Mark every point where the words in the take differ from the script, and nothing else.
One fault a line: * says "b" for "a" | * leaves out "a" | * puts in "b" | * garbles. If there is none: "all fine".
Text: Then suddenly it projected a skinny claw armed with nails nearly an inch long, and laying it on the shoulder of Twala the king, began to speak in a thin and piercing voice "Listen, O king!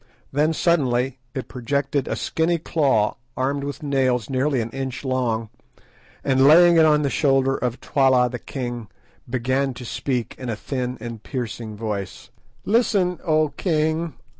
all fine